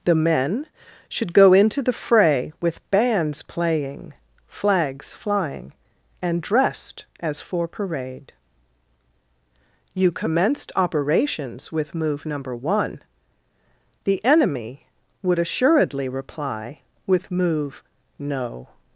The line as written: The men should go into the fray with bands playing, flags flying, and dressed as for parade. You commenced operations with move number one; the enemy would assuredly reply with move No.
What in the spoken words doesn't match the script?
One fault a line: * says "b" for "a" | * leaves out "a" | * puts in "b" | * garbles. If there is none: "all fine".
all fine